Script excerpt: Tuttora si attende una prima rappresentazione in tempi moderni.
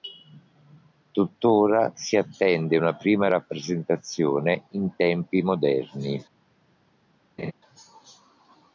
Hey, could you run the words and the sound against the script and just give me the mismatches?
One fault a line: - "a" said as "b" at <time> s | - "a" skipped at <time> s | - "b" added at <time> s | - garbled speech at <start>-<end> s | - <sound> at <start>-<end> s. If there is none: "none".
- laugh at 7.4-7.5 s